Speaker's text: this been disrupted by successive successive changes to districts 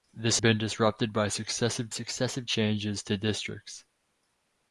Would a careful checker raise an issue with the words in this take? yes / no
no